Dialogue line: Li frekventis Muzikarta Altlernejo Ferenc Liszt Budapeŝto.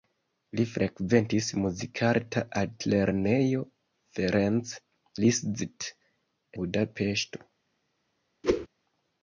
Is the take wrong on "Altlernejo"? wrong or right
right